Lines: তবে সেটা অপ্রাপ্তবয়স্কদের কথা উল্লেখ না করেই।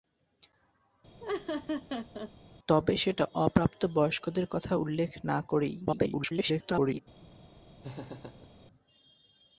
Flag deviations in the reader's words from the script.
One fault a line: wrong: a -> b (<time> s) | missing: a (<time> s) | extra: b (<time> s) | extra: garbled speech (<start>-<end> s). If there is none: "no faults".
extra: garbled speech (5.9-7.0 s)